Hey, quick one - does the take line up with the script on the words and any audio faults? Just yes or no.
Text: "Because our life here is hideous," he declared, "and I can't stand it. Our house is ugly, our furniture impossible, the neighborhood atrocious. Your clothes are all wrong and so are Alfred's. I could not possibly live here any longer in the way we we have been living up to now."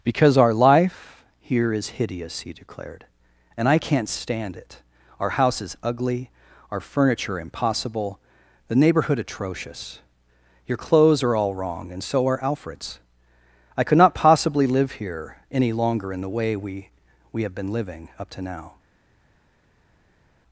yes